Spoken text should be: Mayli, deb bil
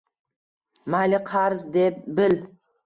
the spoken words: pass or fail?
fail